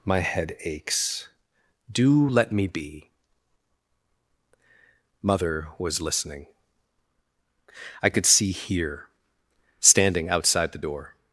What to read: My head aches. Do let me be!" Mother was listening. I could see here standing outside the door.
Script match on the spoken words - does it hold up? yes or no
yes